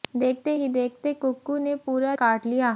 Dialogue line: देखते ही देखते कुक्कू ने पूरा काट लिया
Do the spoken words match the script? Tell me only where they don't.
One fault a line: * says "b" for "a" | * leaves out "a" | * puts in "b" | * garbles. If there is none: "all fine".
all fine